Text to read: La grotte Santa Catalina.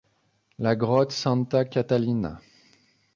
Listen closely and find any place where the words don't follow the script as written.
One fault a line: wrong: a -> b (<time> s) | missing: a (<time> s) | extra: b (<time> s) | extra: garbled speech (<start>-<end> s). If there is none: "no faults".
no faults